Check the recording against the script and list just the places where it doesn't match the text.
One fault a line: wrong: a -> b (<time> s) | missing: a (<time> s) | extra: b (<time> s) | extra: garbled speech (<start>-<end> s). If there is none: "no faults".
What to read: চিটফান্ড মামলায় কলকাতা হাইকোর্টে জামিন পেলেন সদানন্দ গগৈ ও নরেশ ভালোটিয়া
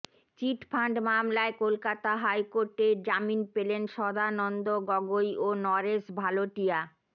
no faults